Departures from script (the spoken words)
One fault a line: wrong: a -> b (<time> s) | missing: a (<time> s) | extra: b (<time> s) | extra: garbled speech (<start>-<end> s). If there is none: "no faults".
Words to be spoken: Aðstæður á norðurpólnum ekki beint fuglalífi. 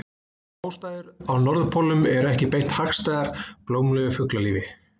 extra: eru (2.1 s)
extra: hagstæðar blómlegu (2.8 s)